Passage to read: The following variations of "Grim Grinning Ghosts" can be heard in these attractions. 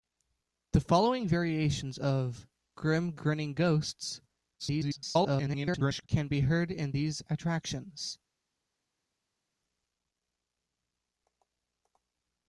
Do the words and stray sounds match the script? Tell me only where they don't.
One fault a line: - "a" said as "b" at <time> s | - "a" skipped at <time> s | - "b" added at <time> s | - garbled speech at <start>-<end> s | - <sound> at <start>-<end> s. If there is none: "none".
- garbled speech at 4.6-6.1 s